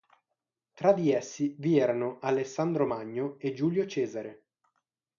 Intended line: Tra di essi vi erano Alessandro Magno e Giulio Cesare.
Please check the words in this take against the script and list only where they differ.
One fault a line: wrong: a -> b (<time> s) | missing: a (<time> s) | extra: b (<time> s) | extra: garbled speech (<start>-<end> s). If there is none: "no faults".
no faults